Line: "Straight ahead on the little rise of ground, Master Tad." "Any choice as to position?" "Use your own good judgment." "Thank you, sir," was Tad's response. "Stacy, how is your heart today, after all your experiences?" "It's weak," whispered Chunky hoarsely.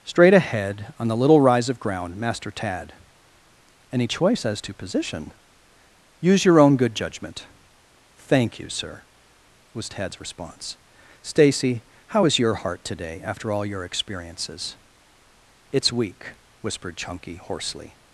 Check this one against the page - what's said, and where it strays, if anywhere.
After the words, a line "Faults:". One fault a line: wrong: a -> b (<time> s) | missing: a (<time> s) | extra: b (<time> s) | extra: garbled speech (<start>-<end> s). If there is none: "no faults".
"Straight ahead on the little rise of ground, Master Tad." "Any choice as to position?" "Use your own good judgment." "Thank you, sir," was Tad's response. "Stacy, how is your heart today, after all your experiences?" "It's weak," whispered Chunky hoarsely.
Faults:
no faults